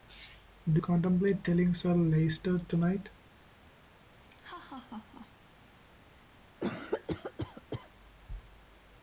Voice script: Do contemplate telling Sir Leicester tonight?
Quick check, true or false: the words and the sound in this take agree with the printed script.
false